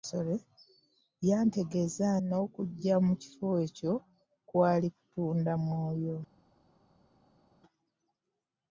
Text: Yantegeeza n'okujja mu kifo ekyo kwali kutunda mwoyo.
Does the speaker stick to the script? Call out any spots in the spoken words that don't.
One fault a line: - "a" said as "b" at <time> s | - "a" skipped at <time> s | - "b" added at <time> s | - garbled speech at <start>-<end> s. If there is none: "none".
none